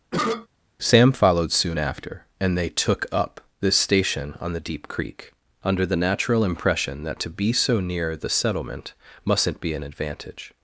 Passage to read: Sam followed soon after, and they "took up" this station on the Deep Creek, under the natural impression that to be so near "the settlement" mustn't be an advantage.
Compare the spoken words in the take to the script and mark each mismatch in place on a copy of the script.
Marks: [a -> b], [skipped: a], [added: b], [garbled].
Sam followed soon after, and they "took up" this station on the Deep Creek, under the natural impression that to be so near "the settlement" mustn't be an advantage.